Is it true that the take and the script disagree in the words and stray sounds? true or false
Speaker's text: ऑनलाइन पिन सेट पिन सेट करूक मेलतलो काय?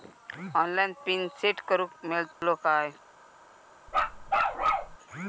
true